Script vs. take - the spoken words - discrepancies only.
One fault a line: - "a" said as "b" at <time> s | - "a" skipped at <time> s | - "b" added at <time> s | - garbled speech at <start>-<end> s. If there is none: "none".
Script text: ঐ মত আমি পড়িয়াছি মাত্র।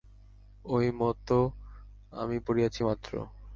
none